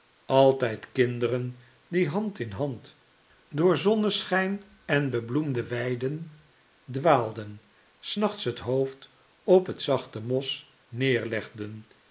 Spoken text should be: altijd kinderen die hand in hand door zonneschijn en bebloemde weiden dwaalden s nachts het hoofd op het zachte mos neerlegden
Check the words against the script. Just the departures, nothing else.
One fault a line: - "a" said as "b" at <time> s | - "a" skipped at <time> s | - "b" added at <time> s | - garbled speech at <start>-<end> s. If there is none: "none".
none